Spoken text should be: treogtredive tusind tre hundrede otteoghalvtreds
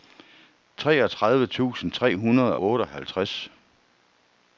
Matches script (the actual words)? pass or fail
pass